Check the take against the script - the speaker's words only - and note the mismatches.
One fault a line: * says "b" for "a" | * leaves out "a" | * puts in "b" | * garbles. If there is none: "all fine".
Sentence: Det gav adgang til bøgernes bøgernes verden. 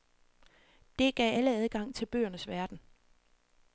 * puts in "alle"
* leaves out "bøgernes"